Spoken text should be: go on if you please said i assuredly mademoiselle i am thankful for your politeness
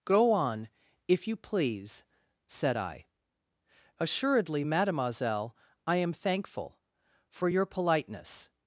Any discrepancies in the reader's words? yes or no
no